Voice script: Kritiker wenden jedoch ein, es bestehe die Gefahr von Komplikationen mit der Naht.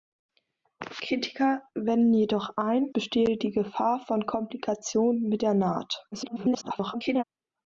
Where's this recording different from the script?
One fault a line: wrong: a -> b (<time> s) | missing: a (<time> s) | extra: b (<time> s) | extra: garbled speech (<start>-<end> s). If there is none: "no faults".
missing: es (2.9 s)
extra: garbled speech (6.1-7.2 s)